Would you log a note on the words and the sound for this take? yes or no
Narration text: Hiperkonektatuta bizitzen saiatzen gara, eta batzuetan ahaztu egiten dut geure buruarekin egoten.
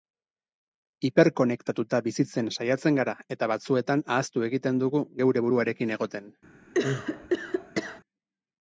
yes